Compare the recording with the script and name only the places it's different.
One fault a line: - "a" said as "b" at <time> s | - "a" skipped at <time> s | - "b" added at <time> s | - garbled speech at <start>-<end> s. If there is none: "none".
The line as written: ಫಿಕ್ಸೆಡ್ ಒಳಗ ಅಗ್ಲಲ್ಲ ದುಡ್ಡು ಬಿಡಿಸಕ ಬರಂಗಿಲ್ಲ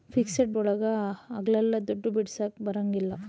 none